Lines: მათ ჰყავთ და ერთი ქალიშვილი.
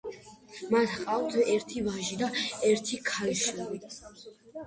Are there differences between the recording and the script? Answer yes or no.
yes